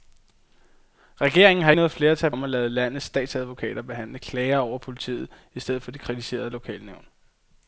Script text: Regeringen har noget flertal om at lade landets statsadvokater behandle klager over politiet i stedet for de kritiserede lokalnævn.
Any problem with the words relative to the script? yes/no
no